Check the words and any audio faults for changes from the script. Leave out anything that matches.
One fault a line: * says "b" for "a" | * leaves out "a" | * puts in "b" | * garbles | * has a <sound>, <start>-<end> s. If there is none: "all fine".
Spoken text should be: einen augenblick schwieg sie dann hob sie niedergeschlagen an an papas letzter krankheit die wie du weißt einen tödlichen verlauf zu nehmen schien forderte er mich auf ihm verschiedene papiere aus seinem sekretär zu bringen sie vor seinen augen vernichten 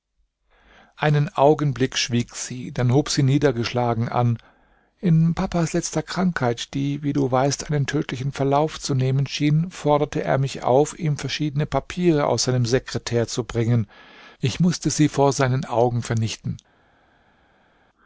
* says "in" for "an"
* puts in "ich mußte"